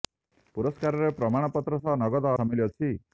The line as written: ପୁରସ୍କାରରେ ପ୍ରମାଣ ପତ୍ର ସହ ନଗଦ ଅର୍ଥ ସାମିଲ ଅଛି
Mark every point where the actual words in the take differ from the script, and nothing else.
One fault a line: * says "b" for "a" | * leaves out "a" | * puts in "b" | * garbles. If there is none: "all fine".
* leaves out "ଅର୍ଥ"